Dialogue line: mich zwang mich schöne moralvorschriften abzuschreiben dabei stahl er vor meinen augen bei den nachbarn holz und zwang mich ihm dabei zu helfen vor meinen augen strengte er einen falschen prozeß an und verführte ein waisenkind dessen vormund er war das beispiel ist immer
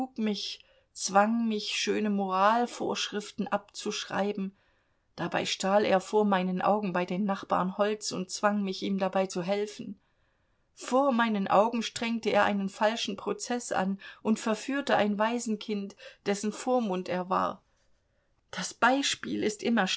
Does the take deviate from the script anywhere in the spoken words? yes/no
no